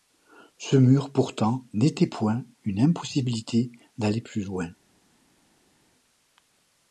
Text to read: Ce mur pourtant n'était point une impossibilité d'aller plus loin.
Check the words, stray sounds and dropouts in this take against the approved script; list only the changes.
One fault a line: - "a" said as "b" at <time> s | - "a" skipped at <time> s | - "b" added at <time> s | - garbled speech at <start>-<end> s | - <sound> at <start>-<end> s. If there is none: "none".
none